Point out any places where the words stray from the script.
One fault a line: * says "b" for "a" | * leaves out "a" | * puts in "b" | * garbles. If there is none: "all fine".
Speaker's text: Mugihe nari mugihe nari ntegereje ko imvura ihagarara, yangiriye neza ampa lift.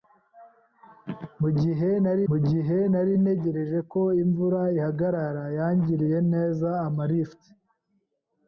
all fine